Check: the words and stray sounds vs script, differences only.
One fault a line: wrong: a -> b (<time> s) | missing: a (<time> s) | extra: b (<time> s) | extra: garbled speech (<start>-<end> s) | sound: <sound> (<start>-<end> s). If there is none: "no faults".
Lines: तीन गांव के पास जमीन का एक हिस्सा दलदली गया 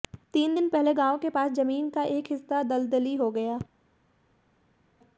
extra: दिन पहले (0.5 s)
extra: हो (3.1 s)